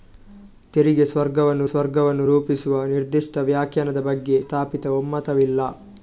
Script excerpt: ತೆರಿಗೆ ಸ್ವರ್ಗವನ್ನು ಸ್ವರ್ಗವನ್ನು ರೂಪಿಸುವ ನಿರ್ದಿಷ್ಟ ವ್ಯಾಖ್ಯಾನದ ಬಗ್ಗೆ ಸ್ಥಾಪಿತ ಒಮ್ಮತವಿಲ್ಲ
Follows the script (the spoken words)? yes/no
yes